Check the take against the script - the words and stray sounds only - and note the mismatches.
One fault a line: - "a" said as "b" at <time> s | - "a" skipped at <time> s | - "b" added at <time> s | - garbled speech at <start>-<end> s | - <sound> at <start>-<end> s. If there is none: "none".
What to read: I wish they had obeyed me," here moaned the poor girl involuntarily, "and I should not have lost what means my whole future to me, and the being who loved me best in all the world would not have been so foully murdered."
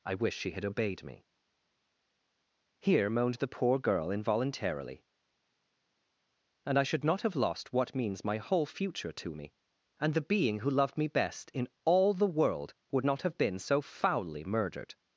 - "they" said as "she" at 0.4 s